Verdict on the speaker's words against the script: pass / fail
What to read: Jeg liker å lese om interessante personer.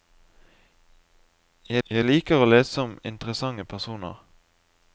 fail